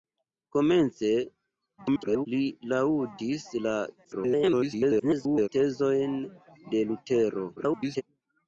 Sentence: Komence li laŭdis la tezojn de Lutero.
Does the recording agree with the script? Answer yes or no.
no